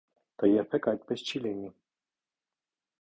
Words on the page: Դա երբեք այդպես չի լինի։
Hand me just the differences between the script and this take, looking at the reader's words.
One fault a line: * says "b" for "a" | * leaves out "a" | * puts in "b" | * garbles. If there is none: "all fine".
all fine